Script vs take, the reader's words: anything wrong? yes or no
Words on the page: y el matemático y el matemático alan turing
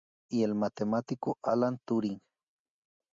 yes